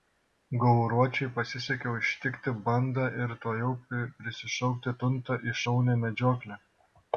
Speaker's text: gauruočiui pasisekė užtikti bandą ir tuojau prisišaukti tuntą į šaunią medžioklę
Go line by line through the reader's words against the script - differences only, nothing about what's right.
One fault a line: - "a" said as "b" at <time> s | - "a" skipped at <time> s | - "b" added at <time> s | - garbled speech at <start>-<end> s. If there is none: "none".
none